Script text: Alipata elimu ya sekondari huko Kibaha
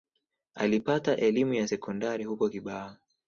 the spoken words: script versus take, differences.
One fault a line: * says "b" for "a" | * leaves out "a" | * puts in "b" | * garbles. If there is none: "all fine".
all fine